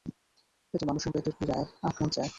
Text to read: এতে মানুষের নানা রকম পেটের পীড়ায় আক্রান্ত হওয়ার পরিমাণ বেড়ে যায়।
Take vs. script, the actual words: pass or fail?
fail